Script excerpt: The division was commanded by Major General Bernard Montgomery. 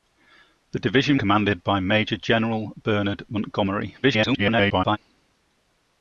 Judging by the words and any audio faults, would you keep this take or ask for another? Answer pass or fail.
fail